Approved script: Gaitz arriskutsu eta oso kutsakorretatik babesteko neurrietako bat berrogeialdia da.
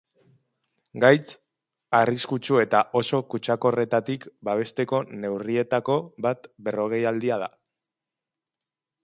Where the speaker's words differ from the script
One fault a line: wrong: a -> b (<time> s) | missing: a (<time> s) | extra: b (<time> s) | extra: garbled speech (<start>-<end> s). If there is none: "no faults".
no faults